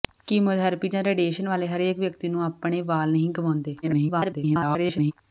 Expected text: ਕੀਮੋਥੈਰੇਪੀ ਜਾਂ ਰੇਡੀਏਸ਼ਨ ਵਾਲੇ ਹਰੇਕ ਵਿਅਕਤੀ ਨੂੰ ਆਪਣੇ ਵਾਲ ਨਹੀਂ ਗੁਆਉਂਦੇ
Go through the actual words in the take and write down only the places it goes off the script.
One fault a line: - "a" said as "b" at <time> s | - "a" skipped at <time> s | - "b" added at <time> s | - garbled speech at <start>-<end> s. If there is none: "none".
- garbled speech at 3.8-5.1 s